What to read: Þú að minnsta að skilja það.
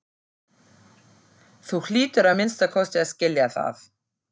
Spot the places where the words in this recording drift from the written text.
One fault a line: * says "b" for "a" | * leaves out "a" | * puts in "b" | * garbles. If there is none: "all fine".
* puts in "hlýtur"
* puts in "kosti"